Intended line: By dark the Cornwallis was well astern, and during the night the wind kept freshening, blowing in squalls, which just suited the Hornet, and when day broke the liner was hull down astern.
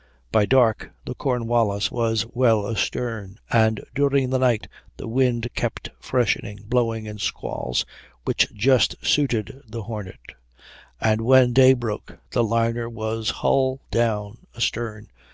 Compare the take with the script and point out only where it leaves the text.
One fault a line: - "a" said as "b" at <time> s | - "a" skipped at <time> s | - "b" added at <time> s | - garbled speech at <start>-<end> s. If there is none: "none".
none